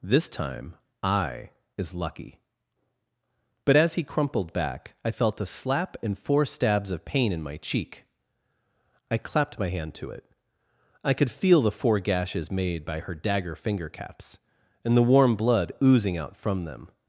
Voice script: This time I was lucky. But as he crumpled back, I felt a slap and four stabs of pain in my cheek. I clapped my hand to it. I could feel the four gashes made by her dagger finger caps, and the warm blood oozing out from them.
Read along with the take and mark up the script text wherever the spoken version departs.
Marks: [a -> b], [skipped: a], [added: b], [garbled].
This time I [was -> is] lucky. But as he crumpled back, I felt a slap and four stabs of pain in my cheek. I clapped my hand to it. I could feel the four gashes made by her dagger finger caps, and the warm blood oozing out from them.